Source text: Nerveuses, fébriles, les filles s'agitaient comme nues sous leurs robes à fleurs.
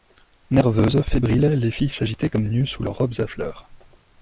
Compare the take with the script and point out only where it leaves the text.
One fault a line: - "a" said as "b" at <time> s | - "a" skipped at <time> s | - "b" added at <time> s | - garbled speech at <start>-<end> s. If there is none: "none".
none